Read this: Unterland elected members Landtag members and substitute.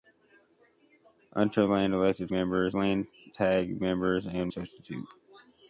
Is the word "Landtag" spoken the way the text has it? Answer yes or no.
yes